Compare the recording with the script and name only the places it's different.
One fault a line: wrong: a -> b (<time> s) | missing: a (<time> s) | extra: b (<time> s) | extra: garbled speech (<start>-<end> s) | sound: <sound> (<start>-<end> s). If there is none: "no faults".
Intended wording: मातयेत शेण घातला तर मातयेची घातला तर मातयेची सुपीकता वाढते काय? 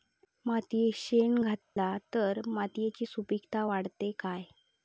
sound: dropout (1.6-1.8 s)
missing: घातला तर मातयेची (3.1 s)